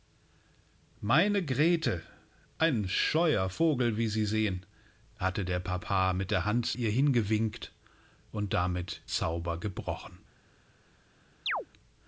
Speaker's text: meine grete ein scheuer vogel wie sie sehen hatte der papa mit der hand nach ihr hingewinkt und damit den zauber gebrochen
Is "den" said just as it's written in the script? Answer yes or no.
no